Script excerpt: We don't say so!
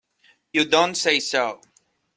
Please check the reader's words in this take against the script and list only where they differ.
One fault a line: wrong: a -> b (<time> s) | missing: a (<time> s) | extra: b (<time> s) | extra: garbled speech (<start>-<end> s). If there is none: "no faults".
wrong: We -> You (0.5 s)